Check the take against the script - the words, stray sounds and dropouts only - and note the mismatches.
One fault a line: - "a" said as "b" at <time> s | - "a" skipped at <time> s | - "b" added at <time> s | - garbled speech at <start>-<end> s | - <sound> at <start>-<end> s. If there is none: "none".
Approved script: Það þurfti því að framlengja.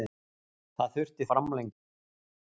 - "því að" skipped at 1.3 s